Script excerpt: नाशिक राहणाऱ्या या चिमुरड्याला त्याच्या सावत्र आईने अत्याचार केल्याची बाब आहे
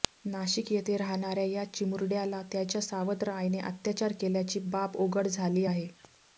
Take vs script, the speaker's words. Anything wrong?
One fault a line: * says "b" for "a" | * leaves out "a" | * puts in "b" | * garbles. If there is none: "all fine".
* puts in "येथे"
* puts in "उघड झाली"